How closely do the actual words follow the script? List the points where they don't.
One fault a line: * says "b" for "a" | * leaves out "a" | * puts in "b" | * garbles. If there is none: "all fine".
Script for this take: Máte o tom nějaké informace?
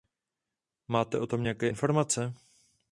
all fine